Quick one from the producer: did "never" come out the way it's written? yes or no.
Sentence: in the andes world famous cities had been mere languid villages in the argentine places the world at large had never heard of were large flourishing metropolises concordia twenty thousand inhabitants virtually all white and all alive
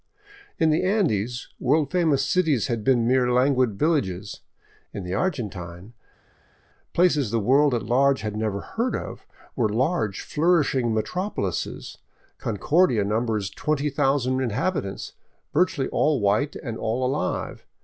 yes